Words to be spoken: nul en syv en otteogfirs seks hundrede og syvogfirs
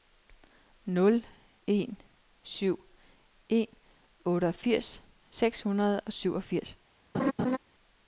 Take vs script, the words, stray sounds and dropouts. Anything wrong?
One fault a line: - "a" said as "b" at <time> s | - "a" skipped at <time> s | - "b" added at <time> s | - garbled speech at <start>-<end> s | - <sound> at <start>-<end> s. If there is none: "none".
- laugh at 7.1-7.6 s